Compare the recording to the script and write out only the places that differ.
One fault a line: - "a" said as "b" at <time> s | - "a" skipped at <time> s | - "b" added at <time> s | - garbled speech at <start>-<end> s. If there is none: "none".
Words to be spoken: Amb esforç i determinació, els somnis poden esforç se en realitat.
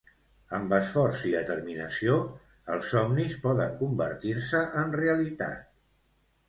- "esforç" said as "convertir" at 3.8 s